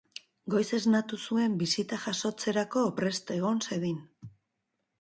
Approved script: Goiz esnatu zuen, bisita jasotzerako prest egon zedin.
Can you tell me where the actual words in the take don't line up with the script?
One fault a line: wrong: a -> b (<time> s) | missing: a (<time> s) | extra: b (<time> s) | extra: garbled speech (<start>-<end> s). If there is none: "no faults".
no faults